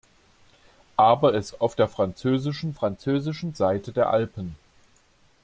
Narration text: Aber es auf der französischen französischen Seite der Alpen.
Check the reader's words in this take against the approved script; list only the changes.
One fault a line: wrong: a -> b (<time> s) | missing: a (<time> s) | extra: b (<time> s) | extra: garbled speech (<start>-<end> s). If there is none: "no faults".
no faults